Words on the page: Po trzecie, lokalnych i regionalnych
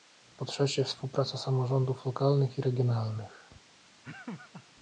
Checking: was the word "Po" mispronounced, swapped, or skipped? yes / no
no